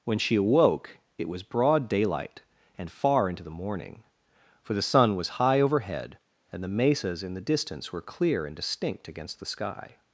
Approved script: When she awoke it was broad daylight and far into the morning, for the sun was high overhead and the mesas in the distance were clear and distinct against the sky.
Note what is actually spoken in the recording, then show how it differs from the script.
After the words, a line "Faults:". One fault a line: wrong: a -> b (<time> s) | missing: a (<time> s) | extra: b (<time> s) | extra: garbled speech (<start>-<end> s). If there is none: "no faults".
When she awoke it was broad daylight and far into the morning, for the sun was high overhead and the mesas in the distance were clear and distinct against the sky.
Faults:
no faults